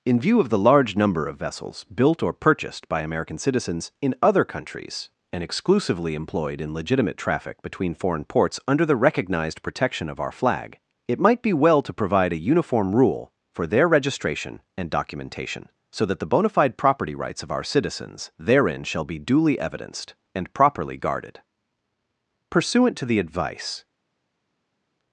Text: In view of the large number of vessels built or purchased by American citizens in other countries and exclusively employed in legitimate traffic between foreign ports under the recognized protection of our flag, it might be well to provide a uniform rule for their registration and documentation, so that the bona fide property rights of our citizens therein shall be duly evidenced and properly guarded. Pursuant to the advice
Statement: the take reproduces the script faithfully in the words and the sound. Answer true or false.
true